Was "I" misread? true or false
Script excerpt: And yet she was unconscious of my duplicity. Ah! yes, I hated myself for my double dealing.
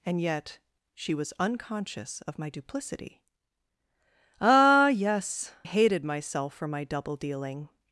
true